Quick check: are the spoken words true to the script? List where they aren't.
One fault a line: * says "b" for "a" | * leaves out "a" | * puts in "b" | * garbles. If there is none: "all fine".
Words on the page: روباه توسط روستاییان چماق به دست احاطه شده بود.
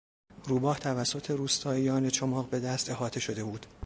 all fine